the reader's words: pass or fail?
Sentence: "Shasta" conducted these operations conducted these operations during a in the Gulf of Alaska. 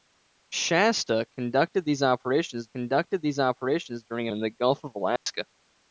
pass